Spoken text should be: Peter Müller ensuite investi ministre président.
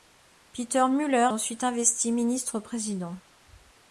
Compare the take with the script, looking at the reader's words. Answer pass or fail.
pass